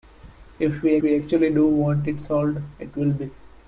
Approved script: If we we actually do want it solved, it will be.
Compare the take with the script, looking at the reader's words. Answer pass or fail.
pass